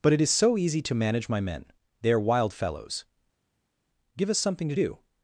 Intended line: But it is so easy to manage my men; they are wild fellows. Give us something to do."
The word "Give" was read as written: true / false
true